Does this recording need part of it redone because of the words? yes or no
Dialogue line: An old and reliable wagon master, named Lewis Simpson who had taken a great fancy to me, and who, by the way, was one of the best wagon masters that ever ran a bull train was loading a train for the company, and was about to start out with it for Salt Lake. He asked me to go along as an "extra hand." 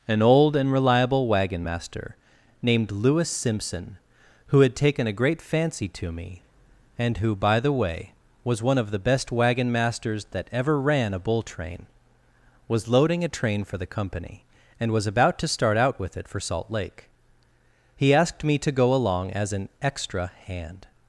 no